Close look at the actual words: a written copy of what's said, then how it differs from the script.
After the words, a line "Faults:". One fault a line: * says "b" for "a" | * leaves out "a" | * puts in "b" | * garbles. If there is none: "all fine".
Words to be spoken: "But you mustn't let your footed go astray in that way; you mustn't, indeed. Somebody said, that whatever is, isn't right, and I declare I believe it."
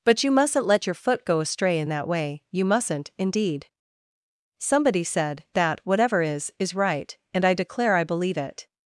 "But you mustn't let your foot go astray in that way; you mustn't, indeed. Somebody said, that whatever is, is right, and I declare I believe it."
Faults:
* says "foot" for "footed"
* says "is" for "isn't"